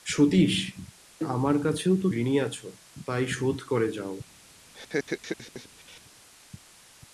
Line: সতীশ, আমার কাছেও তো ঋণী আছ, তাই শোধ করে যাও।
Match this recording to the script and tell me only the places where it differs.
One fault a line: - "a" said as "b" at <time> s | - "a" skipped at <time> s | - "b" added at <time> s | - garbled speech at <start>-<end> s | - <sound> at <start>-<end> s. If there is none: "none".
- laugh at 4.7-6.0 s